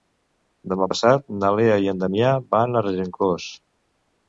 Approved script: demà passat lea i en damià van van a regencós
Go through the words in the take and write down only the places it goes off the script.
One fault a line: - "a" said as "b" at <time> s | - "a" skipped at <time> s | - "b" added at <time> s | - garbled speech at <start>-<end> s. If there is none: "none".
- "na" added at 1.4 s
- "van" skipped at 2.8 s